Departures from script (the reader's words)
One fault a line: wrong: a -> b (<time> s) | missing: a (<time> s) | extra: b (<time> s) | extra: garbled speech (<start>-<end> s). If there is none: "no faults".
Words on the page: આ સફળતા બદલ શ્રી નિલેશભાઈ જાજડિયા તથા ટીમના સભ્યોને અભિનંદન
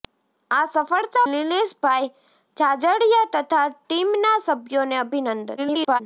missing: બદલ શ્રી (1.2 s)
extra: garbled speech (5.6-6.0 s)